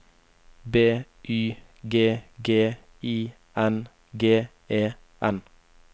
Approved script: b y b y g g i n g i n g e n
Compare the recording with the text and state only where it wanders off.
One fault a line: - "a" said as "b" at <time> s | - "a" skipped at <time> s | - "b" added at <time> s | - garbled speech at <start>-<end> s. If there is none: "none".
- "b y" skipped at 1.6 s
- "i n g" skipped at 4.5 s